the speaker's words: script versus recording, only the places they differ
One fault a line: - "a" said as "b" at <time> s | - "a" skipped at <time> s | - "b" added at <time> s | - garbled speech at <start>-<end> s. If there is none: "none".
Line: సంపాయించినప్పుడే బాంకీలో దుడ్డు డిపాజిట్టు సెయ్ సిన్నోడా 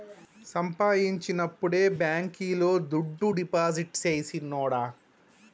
none